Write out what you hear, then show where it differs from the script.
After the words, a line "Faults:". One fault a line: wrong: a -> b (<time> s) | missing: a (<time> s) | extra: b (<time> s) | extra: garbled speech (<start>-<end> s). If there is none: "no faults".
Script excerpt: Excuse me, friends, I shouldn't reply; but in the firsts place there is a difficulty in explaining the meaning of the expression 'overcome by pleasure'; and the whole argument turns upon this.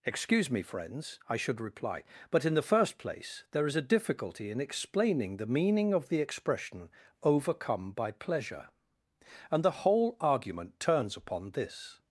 Excuse me, friends, I should reply; but in the first place there is a difficulty in explaining the meaning of the expression 'overcome by pleasure'; and the whole argument turns upon this.
Faults:
wrong: shouldn't -> should (1.4 s)
wrong: firsts -> first (2.6 s)